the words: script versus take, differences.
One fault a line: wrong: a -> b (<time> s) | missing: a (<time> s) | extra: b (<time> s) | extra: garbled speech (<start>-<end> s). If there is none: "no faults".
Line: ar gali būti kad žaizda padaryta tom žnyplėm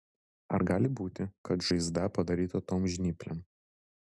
no faults